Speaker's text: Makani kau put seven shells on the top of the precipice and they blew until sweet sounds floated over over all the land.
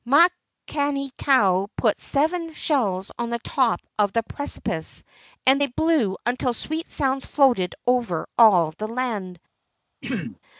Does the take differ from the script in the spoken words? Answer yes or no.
yes